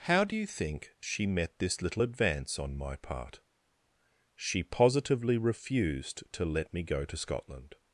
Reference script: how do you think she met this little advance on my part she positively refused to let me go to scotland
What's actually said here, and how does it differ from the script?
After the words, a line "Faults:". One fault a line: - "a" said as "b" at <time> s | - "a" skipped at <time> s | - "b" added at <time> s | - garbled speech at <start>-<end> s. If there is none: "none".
how do you think she met this little advance on my part she positively refused to let me go to scotland
Faults:
none